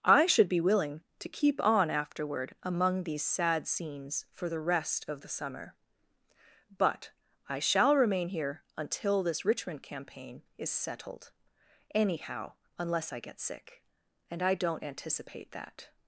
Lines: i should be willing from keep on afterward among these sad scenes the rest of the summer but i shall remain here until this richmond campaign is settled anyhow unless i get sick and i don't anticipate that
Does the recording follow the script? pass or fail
fail